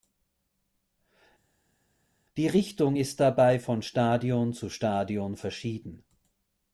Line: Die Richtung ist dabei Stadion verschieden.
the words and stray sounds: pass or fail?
fail